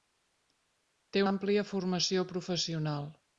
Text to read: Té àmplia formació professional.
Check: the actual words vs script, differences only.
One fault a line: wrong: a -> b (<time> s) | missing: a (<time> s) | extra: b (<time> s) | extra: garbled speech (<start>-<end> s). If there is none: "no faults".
no faults